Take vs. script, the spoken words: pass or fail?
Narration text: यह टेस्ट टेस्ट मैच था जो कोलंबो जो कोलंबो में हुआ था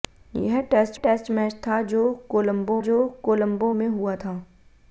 pass